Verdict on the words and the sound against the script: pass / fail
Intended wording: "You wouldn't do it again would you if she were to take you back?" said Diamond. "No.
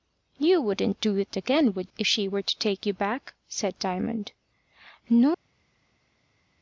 fail